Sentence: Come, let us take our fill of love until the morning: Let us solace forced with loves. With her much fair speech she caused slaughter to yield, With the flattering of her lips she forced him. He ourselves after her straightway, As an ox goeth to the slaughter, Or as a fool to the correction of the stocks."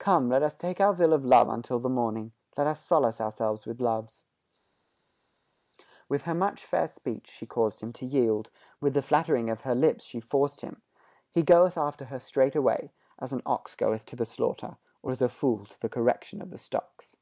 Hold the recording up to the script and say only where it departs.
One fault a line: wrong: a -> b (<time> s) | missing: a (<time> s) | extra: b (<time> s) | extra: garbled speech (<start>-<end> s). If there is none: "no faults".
wrong: forced -> ourselves (3.2 s)
wrong: slaughter -> him (7.8 s)
wrong: ourselves -> goeth (11.4 s)